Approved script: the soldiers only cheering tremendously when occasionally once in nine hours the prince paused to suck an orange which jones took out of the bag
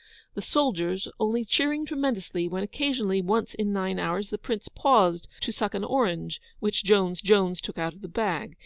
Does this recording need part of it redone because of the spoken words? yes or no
yes